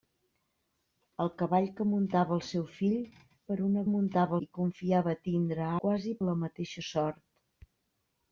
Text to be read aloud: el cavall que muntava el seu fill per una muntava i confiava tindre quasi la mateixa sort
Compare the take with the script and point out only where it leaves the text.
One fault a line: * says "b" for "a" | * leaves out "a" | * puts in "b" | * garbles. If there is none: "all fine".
all fine